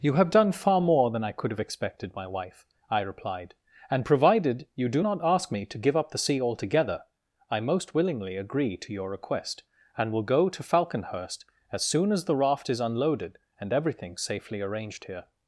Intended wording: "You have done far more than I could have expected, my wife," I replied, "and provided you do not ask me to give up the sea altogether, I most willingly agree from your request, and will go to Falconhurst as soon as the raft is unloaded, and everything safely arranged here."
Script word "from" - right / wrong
wrong